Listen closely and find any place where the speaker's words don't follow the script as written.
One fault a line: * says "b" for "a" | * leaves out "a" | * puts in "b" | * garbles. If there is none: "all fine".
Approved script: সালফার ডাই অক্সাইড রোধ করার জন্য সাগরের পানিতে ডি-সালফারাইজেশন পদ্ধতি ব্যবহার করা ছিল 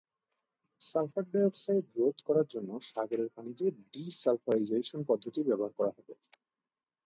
* says "হবে" for "ছিল"